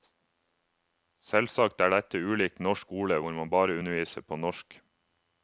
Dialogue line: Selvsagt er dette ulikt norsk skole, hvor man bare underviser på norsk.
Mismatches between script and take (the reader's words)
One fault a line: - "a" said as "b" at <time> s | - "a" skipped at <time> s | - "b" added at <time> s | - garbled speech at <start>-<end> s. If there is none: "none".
none